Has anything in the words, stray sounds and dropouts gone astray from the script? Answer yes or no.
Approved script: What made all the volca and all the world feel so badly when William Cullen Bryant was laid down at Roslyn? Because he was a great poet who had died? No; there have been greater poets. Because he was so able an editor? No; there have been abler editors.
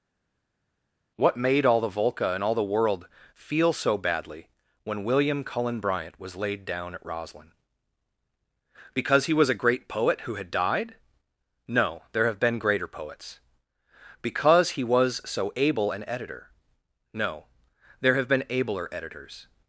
no